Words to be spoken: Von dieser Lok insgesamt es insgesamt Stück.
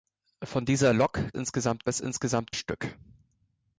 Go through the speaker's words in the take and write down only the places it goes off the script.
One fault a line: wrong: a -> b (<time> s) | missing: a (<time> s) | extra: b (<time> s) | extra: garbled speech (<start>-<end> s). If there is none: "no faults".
no faults